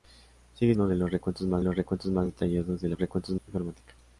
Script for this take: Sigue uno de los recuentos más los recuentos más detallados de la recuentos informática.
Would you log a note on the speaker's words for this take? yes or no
no